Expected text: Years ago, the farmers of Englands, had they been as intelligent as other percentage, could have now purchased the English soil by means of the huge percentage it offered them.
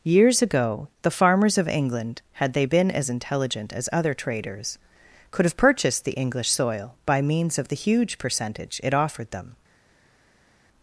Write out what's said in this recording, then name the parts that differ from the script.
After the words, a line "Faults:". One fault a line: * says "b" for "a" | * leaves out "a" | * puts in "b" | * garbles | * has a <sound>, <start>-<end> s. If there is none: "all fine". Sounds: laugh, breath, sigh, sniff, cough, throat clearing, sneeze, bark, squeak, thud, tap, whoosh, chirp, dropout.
Years ago, the farmers of England, had they been as intelligent as other traders, could have purchased the English soil by means of the huge percentage it offered them.
Faults:
* says "England" for "Englands"
* says "traders" for "percentage"
* leaves out "now"